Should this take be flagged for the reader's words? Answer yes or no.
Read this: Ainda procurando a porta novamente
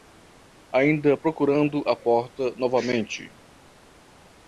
no